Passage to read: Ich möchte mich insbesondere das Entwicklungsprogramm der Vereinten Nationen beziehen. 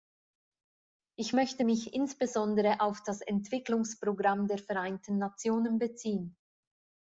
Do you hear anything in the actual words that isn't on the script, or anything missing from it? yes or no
yes